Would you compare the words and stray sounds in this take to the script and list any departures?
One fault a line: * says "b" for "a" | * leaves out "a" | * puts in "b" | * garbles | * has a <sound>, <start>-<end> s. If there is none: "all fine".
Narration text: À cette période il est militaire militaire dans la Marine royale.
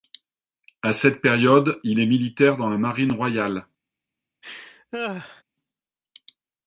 * leaves out "militaire"
* has a laugh, 4.4-5.4 s